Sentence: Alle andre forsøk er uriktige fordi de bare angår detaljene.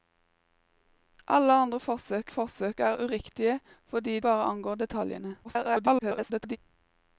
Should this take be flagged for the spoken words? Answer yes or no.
yes